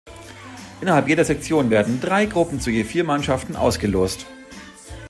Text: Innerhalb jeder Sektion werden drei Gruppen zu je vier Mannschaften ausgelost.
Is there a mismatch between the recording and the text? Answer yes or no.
no